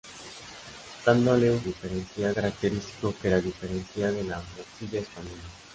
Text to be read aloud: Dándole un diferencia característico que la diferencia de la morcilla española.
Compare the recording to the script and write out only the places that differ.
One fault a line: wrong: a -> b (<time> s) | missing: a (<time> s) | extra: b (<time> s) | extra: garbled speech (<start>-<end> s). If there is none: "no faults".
no faults